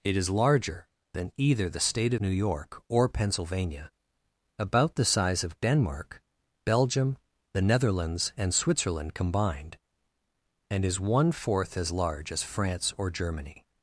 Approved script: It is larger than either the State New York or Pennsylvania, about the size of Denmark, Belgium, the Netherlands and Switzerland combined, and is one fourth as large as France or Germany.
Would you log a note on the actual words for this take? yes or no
no